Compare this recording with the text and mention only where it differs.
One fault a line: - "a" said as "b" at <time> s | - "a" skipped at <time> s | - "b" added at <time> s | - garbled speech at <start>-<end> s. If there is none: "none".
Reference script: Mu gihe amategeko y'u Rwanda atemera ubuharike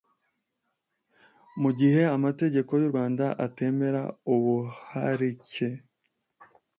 none